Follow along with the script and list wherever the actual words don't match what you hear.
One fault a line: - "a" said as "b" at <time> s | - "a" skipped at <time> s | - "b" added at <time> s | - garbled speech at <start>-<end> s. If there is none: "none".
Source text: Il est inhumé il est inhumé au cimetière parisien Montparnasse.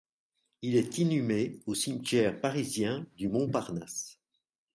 - "il est inhumé" skipped at 1.6 s
- "du" added at 3.2 s